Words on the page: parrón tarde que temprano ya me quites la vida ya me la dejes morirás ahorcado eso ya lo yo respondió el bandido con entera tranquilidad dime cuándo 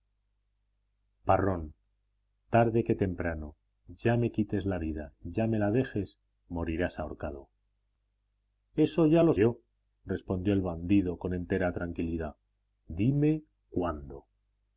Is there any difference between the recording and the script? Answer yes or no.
no